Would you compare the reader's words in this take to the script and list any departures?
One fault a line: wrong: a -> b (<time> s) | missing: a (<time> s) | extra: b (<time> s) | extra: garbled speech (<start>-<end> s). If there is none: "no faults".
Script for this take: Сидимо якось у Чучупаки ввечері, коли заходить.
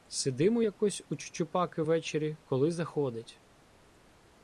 no faults